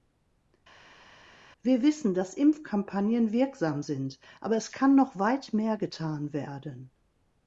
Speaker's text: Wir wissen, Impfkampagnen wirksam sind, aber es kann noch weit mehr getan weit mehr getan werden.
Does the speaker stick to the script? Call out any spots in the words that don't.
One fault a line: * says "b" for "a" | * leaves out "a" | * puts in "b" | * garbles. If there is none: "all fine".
* puts in "dass"
* leaves out "weit mehr getan"